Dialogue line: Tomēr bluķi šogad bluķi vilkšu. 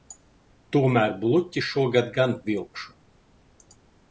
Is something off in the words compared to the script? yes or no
yes